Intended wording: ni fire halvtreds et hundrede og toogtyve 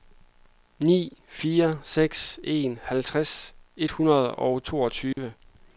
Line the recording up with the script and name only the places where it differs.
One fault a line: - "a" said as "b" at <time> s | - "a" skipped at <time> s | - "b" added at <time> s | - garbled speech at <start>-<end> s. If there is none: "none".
- "seks en" added at 1.8 s